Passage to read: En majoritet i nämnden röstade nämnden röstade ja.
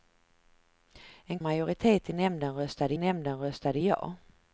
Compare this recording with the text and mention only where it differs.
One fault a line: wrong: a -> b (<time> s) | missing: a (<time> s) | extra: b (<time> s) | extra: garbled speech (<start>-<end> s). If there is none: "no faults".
no faults